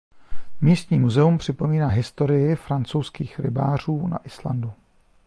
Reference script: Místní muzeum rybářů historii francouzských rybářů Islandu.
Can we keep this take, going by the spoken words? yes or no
no